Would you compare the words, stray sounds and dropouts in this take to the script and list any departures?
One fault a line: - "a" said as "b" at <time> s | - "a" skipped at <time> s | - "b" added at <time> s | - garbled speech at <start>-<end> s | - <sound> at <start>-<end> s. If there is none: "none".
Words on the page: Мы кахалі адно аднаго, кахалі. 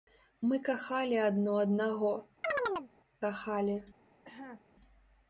- chirp at 2.4-2.9 s
- cough at 4.2-4.6 s